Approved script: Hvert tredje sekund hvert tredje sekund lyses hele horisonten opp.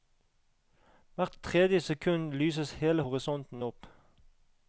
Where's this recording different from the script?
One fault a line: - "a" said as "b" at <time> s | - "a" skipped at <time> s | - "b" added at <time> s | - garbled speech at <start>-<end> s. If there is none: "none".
- "hvert tredje sekund" skipped at 2.3 s